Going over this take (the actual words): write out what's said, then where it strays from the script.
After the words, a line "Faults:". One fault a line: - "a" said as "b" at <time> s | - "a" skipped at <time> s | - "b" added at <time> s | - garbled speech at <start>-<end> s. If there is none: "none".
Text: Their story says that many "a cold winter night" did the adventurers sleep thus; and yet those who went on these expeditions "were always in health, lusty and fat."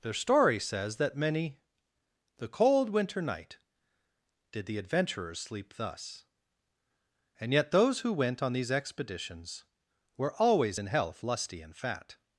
Their story says that many "the cold winter night" did the adventurers sleep thus; and yet those who went on these expeditions "were always in health, lusty and fat."
Faults:
- "a" said as "the" at 2.4 s